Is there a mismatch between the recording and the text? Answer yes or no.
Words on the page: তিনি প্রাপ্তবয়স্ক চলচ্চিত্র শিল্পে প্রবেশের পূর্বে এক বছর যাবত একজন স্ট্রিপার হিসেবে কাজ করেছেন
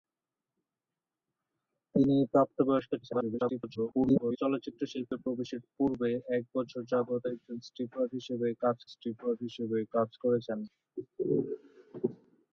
yes